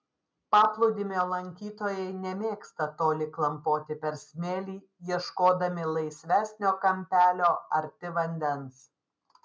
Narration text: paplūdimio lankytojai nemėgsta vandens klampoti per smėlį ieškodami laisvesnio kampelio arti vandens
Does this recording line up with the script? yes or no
no